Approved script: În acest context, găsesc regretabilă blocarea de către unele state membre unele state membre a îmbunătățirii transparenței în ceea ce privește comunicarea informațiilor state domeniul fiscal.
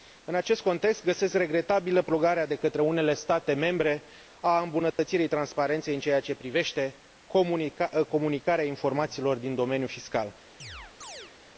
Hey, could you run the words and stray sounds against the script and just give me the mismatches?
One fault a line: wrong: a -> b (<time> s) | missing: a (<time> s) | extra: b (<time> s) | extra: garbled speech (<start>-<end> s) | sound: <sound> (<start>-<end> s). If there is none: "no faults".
missing: unele state membre (4.0 s)
sound: dropout (4.9-5.0 s)
wrong: state -> din (9.4 s)
sound: chirp (10.6-11.3 s)